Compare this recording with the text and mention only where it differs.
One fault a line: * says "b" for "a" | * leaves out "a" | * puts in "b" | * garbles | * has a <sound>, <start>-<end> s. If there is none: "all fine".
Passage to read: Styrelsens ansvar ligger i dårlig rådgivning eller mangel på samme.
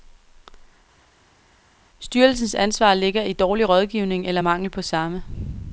all fine